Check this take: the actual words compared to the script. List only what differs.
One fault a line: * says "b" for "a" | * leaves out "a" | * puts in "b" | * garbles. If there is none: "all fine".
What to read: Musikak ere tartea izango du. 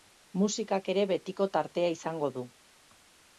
* puts in "betiko"